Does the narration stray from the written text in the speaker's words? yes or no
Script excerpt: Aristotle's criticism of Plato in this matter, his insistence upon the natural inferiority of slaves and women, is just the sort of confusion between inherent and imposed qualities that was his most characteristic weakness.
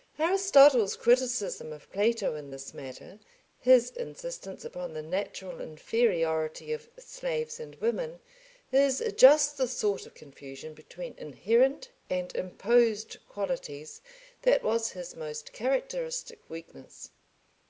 no